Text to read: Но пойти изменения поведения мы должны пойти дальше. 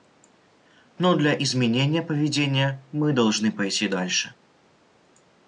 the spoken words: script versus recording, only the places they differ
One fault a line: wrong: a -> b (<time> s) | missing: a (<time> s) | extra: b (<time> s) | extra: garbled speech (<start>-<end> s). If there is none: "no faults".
wrong: пойти -> для (1.1 s)